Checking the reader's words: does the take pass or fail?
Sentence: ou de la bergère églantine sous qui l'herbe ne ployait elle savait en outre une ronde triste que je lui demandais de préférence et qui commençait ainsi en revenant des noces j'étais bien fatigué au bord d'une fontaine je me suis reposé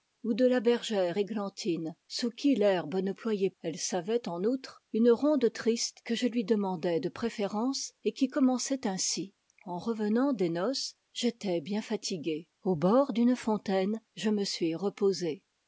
pass